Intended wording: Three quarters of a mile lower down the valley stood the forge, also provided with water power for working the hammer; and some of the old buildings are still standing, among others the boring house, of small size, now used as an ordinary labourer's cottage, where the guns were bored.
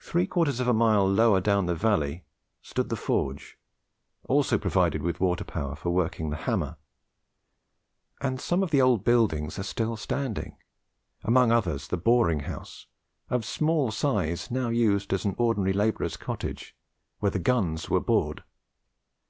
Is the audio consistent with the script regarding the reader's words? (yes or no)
yes